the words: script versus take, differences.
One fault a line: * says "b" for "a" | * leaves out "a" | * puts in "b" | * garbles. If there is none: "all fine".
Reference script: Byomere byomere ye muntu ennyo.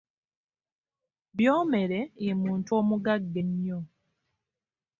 * leaves out "byomere"
* puts in "omugagga"